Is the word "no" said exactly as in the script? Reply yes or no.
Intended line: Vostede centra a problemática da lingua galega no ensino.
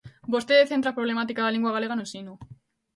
yes